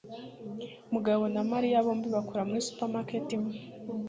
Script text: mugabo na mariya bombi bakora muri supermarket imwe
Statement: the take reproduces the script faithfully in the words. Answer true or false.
true